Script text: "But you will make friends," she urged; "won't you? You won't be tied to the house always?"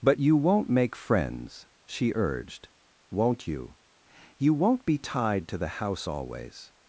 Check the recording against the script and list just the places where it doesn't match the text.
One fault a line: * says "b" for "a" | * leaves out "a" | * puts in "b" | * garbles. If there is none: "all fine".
* says "won't" for "will"